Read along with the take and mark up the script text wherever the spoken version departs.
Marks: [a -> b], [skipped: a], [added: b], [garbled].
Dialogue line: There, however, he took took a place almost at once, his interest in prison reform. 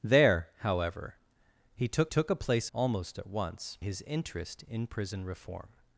There, however, he took took a place almost at once, his interest in prison reform.